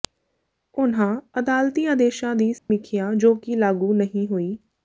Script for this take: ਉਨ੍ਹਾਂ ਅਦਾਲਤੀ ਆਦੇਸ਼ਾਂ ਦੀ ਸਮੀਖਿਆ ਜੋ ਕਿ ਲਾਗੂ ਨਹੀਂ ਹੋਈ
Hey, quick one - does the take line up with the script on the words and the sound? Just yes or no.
no